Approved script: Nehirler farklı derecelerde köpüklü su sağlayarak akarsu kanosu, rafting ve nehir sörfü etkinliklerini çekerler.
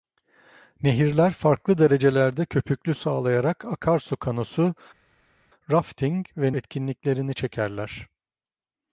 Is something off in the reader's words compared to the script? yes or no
yes